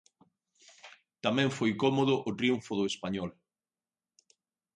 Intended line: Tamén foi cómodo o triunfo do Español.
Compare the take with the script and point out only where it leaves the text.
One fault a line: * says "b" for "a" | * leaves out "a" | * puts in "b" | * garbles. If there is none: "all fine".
all fine